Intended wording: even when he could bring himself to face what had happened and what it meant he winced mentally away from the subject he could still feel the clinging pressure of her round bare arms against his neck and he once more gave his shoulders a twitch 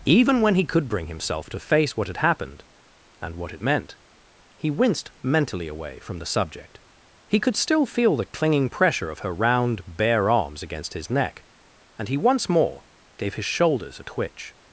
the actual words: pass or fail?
pass